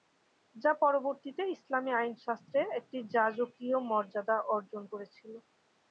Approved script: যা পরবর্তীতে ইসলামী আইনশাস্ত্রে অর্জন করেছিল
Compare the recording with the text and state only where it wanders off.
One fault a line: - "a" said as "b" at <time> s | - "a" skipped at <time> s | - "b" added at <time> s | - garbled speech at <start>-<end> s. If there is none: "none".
- "একটি যাজকীয় মর্যাদা" added at 2.8 s